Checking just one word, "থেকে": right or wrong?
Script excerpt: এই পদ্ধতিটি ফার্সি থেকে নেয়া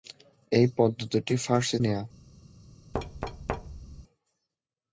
wrong